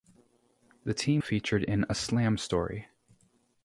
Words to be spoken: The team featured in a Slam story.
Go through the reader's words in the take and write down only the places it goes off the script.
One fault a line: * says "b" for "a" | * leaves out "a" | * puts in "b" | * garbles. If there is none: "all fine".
all fine